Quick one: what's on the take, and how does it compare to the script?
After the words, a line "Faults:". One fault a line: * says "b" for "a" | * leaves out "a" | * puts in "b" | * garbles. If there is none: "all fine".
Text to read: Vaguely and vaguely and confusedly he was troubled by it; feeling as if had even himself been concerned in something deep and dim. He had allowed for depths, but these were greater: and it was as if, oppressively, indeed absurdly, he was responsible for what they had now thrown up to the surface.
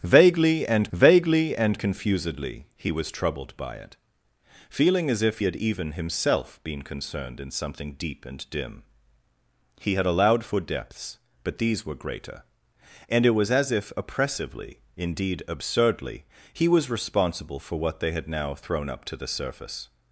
Vaguely and vaguely and confusedly he was troubled by it; feeling as if had even himself been concerned in something deep and dim. He had allowed for depths, but these were greater: and it was as if, oppressively, indeed absurdly, he was responsible for what they had now thrown up to the surface.
Faults:
all fine